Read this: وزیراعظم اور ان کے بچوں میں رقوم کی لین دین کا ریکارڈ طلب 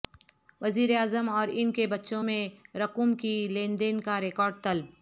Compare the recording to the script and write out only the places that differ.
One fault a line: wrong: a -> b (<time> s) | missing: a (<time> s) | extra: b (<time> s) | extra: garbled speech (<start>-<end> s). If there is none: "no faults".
no faults